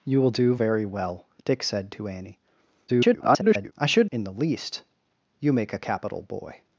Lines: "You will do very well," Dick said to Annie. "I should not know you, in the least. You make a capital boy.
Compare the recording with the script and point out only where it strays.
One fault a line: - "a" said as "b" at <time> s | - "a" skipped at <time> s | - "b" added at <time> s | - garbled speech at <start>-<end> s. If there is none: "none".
- garbled speech at 2.9-3.7 s
- "not know you" skipped at 4.1 s